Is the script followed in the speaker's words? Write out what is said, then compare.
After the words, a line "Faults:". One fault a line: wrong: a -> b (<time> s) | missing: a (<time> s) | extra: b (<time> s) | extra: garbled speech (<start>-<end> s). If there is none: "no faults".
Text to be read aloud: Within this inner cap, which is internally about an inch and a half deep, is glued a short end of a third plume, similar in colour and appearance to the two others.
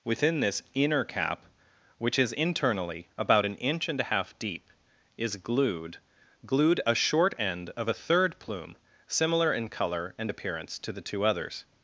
Within this inner cap, which is internally about an inch and a half deep, is glued glued a short end of a third plume, similar in colour and appearance to the two others.
Faults:
extra: glued (6.4 s)